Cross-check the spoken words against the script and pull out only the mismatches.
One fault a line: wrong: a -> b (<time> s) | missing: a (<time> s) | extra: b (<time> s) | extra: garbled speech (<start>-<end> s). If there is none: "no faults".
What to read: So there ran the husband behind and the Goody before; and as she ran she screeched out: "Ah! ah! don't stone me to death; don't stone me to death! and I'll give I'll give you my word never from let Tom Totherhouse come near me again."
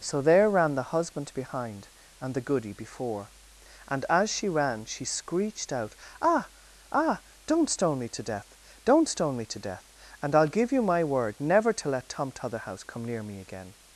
missing: I'll give (10.7 s)
wrong: from -> to (11.7 s)